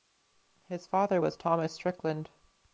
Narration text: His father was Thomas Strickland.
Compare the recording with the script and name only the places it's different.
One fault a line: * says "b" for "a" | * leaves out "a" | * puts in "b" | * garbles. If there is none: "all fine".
all fine